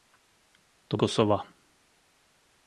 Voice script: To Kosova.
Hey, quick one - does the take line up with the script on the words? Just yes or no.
yes